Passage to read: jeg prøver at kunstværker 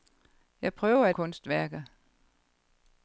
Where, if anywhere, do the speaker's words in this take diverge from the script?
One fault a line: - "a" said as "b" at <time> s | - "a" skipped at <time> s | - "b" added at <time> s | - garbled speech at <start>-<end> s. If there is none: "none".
none